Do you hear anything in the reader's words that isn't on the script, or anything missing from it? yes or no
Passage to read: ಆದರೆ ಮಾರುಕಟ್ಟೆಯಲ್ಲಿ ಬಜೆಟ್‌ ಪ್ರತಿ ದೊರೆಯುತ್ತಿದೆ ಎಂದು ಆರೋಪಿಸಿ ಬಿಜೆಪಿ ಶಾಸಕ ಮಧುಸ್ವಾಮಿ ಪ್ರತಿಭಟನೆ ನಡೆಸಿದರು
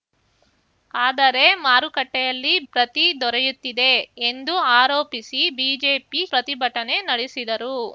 yes